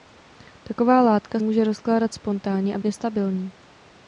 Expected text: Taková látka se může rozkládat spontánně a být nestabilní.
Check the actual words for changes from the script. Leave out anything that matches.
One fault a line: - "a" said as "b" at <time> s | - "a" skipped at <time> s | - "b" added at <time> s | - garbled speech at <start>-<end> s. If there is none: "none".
- "se" skipped at 1.4 s
- "být" skipped at 2.8 s